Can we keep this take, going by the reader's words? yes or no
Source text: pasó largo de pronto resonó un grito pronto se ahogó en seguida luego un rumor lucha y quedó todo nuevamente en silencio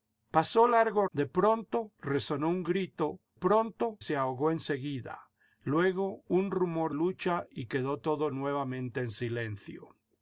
yes